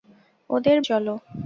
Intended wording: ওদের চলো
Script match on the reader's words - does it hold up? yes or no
yes